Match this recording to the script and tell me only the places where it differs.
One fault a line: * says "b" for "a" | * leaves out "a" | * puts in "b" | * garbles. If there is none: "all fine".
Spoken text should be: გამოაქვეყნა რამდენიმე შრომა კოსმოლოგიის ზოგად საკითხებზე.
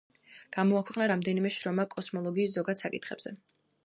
all fine